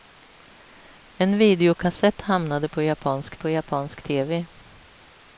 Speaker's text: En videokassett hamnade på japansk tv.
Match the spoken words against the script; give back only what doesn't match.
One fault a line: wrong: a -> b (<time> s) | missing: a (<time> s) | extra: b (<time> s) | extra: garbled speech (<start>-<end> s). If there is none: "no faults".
extra: på japansk (3.4 s)